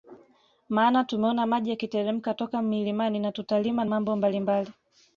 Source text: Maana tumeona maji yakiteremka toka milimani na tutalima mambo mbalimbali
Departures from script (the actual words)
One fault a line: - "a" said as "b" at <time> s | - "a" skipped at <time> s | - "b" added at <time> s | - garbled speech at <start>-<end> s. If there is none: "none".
none